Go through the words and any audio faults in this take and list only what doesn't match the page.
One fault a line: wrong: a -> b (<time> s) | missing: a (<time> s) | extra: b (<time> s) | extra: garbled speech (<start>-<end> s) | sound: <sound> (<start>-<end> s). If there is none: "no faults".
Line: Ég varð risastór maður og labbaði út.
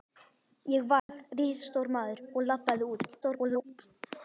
sound: dropout (1.0-1.1 s)
extra: garbled speech (3.2-3.6 s)